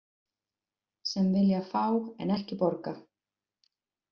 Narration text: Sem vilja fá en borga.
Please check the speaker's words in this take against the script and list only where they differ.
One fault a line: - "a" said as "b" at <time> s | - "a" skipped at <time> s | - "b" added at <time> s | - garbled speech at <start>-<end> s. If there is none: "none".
- "ekki" added at 2.4 s